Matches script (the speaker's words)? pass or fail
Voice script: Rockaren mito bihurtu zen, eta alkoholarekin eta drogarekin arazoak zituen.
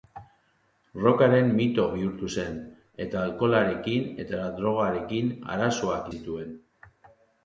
pass